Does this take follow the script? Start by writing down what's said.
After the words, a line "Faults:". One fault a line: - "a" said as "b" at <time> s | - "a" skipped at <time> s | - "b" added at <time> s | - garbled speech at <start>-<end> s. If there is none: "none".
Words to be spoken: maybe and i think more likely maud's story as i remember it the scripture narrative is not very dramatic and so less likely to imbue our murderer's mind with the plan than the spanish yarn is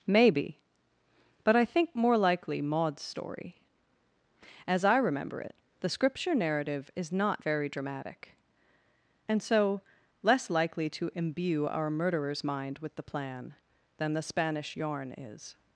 maybe but i think more likely maud's story as i remember it the scripture narrative is not very dramatic and so less likely to imbue our murderer's mind with the plan than the spanish yarn is
Faults:
- "and" said as "but" at 1.4 s